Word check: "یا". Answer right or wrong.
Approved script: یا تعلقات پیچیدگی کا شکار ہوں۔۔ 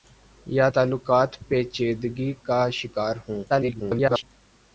right